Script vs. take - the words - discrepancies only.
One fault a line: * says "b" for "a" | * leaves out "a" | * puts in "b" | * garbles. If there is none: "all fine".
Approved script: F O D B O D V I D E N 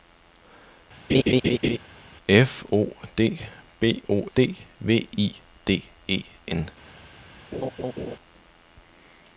all fine